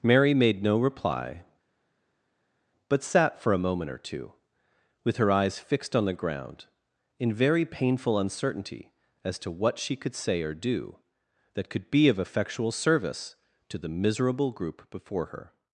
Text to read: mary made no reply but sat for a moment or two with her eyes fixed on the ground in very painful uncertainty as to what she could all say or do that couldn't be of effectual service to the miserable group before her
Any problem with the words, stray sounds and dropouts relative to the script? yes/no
yes